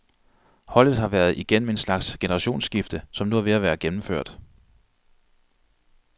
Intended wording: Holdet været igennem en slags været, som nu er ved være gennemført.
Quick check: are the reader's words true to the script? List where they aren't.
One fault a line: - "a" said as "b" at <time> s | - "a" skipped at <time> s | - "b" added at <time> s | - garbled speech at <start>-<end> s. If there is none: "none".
- "har" added at 1.0 s
- "været" said as "generationsskifte" at 2.2 s
- "at" added at 3.5 s